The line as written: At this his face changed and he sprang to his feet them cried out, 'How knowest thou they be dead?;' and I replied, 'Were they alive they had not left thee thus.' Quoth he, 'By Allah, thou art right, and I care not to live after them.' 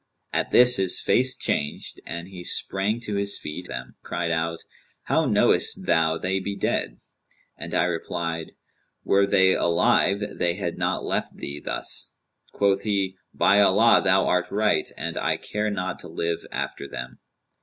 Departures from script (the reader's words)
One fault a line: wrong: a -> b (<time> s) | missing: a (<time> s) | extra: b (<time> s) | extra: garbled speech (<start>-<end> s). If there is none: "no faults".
no faults